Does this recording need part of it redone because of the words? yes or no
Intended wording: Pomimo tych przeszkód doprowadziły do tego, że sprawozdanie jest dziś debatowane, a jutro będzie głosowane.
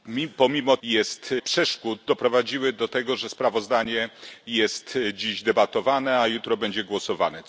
yes